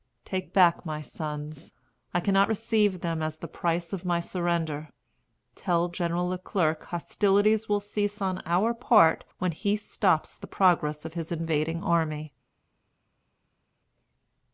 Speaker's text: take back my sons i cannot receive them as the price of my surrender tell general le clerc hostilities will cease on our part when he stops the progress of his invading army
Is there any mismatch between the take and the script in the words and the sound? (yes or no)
no